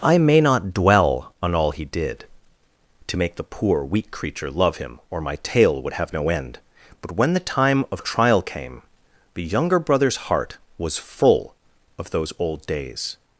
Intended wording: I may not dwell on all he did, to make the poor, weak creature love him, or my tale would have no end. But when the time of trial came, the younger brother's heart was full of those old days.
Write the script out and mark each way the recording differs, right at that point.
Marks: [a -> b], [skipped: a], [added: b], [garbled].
I may not dwell on all he did, to make the poor, weak creature love him, or my tale would have no end. But when the time of trial came, the younger brother's heart was full of those old days.